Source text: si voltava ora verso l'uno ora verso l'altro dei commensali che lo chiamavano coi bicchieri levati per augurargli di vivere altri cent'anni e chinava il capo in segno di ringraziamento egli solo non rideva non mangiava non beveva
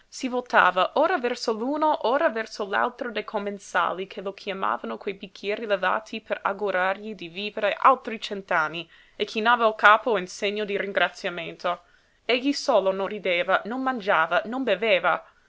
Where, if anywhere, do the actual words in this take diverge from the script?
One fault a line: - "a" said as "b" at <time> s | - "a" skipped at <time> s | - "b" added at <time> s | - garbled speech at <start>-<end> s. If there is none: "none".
none